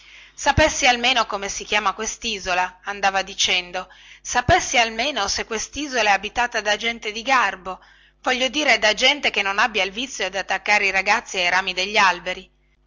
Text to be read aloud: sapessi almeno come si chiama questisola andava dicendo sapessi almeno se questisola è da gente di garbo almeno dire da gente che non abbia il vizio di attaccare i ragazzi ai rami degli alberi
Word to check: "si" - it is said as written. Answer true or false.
true